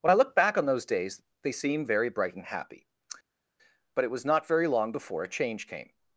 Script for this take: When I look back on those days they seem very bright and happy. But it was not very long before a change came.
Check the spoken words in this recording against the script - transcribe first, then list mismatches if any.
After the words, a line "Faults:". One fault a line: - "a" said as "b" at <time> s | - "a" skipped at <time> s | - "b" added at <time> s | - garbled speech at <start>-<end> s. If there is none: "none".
When I look back on those days they seem very bright and happy. But it was not very long before a change came.
Faults:
none